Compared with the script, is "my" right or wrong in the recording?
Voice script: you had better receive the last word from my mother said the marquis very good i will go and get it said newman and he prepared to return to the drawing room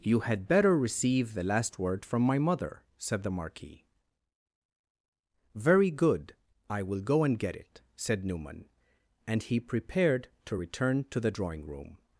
right